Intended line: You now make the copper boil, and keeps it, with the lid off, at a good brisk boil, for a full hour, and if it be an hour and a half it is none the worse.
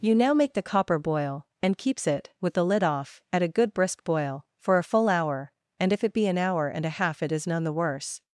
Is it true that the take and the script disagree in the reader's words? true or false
false